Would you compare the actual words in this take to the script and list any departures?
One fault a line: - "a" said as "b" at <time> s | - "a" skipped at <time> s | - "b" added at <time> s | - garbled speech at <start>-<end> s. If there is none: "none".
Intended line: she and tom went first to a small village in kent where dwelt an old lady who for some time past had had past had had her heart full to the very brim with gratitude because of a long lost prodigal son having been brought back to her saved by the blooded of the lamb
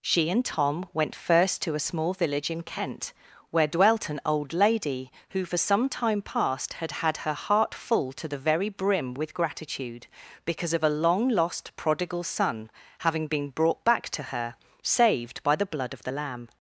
- "past had had" skipped at 7.2 s
- "blooded" said as "blood" at 15.7 s